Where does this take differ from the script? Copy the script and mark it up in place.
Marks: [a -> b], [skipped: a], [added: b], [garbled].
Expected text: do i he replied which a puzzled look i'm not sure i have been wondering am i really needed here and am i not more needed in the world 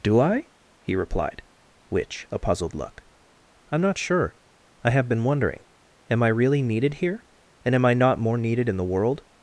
do i he replied which a puzzled look i'm not sure i have been wondering am i really needed here and am i not more needed in the world